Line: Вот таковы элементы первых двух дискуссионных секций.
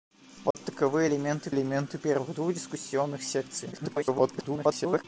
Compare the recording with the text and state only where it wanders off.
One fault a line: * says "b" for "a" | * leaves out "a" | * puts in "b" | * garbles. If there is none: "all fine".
* puts in "элементы"
* garbles